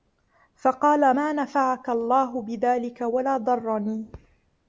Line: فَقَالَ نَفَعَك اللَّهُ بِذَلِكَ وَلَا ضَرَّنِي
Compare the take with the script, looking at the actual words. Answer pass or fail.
fail